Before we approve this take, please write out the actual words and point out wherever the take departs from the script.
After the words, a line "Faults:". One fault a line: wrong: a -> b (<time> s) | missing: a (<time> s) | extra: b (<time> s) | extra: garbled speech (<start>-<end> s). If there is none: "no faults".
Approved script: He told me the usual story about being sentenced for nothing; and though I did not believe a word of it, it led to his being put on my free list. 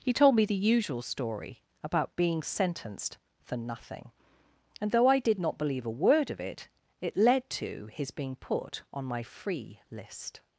He told me the usual story about being sentenced for nothing; and though I did not believe a word of it, it led to his being put on my free list.
Faults:
no faults